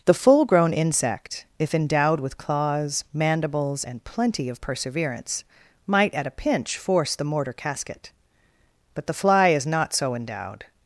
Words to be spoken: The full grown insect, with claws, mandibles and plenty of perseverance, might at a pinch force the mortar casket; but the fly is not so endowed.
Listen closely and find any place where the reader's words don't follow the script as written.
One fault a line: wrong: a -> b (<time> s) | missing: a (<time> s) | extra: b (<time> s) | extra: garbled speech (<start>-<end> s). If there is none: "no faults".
extra: if endowed (1.6 s)